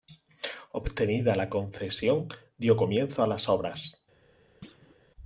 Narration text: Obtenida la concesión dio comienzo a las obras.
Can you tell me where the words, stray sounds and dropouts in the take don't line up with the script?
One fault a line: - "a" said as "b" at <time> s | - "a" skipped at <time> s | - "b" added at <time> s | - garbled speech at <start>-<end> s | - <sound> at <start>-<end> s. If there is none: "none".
- thud at 4.6-5.0 s